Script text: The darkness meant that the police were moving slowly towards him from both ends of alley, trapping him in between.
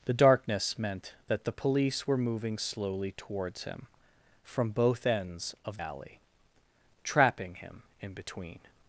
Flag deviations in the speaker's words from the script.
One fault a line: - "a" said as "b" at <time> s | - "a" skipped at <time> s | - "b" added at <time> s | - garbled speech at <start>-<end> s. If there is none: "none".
none